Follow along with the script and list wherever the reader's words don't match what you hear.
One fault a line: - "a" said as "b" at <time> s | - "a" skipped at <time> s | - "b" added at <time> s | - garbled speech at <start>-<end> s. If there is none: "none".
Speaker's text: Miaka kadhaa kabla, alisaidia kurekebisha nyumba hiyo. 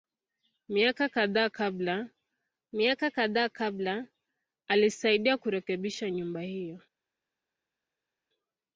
- "miaka kadhaa kabla" added at 2.7 s